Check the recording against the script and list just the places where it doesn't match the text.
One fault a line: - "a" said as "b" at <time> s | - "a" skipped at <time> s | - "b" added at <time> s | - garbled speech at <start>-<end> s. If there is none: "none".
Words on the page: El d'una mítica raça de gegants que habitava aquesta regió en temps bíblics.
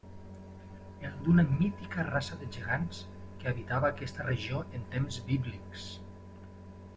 none